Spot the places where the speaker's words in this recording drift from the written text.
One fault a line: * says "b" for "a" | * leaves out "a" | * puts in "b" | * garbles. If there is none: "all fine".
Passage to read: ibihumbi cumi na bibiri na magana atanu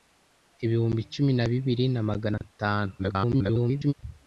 * garbles